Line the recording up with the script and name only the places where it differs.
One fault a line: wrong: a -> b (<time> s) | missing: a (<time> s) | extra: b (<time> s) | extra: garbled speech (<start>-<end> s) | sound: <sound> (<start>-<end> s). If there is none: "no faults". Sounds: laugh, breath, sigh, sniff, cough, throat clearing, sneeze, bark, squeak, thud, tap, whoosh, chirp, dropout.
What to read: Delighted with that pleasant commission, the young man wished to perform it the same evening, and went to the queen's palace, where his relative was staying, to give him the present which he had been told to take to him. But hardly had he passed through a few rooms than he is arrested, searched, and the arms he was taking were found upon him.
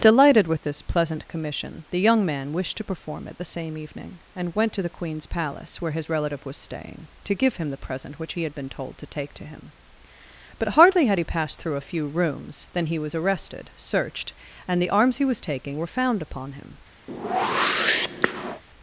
wrong: that -> this (0.6 s)
wrong: is -> was (13.0 s)
sound: whoosh (17.1-18.6 s)